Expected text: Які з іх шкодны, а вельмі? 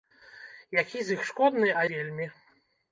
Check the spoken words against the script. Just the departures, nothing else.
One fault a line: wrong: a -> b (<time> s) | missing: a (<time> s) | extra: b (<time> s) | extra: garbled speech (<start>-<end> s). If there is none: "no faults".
no faults